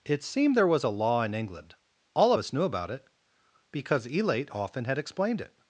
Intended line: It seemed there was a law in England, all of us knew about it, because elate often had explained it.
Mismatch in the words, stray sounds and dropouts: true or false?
false